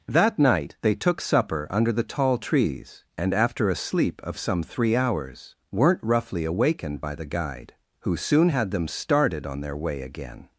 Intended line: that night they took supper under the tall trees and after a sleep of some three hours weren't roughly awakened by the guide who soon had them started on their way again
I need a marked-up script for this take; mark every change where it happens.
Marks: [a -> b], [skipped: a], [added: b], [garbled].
that night they took supper under the tall trees and after a sleep of some three hours weren't roughly awakened by the guide who soon had them started on their way again